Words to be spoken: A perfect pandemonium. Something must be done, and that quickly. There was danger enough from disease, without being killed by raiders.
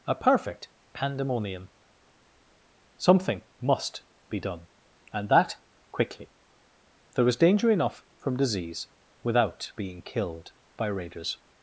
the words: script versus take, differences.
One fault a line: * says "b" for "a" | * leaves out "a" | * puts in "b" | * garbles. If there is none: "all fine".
all fine